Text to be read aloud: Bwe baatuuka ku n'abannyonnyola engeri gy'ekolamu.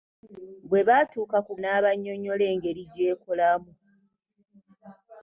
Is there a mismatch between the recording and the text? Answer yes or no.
no